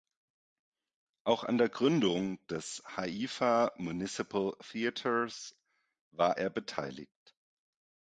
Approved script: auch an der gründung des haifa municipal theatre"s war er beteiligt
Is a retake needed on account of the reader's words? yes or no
no